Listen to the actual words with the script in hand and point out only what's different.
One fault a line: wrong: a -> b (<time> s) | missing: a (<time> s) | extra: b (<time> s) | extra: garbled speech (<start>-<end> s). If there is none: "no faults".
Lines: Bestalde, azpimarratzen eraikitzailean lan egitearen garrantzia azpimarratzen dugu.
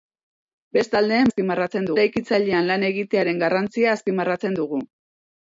no faults